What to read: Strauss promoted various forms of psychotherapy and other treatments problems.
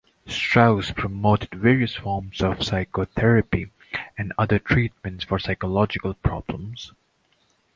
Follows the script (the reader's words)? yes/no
no